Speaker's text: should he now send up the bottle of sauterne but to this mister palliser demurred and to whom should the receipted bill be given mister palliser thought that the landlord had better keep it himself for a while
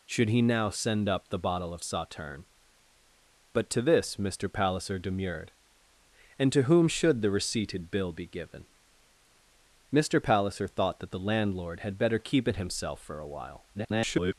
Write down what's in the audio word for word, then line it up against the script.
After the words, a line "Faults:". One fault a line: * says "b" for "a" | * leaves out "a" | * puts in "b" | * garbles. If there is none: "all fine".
should he now send up the bottle of sauterne but to this mister palliser demurred and to whom should the receipted bill be given mister palliser thought that the landlord had better keep it himself for a while [garbled]
Faults:
* garbles